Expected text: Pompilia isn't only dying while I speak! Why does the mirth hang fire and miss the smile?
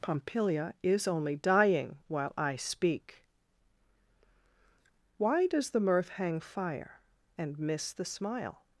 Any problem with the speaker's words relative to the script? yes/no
yes